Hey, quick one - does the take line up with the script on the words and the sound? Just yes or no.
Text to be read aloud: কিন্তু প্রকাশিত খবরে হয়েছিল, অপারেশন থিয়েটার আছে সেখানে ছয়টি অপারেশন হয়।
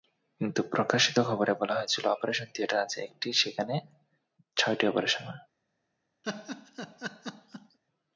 no